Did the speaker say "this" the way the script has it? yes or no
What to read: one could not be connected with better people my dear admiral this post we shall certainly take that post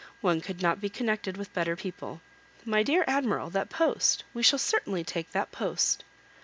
no